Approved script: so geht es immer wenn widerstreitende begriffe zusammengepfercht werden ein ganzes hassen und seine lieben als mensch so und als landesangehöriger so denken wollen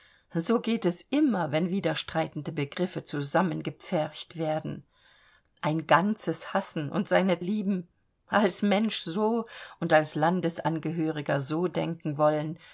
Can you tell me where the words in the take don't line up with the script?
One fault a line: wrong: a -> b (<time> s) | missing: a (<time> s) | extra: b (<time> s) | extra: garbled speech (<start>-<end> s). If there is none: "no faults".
no faults